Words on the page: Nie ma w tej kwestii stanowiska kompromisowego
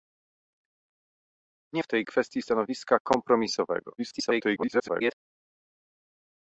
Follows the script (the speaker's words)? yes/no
no